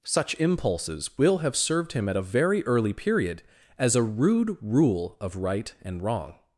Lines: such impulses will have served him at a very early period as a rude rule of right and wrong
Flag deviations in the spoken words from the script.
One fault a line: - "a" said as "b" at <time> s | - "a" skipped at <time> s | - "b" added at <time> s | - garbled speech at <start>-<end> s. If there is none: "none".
none